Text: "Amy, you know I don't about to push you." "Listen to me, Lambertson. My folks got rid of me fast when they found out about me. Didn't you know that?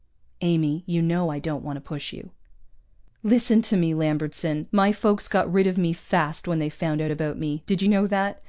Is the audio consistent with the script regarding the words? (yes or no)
no